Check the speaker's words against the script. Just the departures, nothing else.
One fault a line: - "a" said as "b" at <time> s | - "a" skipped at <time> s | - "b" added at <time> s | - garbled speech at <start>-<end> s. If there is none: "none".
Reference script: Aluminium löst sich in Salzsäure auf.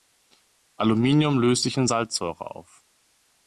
none